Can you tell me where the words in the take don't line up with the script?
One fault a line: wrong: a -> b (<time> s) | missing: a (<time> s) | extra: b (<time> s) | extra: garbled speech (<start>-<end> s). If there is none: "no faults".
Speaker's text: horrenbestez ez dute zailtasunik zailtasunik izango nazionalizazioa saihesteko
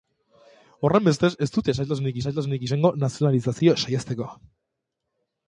no faults